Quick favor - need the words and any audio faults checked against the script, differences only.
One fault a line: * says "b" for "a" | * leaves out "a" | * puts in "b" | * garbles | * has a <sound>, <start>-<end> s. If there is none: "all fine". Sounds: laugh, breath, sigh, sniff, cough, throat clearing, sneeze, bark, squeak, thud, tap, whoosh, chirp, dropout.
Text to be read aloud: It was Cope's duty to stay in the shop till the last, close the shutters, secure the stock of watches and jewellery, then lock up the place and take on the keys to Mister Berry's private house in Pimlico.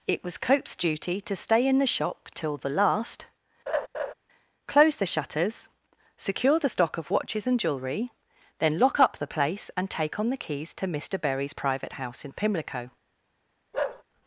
* has a laugh, 3.7-4.1 s
* has a bark, 13.7-14.0 s